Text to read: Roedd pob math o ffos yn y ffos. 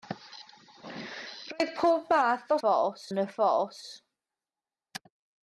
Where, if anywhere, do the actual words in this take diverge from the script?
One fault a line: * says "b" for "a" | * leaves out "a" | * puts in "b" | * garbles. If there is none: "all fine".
all fine